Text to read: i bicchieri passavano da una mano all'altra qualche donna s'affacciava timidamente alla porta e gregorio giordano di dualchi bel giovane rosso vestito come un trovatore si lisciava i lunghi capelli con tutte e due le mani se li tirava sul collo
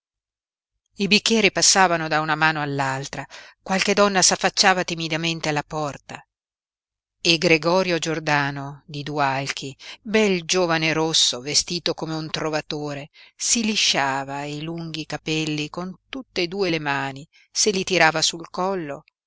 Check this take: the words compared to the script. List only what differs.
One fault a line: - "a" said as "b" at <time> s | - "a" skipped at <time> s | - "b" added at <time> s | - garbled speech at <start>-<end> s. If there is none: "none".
none